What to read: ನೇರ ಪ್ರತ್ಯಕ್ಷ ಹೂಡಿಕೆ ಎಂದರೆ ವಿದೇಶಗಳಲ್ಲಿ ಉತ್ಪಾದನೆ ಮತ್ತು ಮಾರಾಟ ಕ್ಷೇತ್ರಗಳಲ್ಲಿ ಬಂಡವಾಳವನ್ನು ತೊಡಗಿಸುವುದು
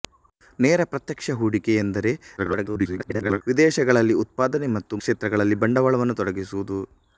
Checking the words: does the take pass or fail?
fail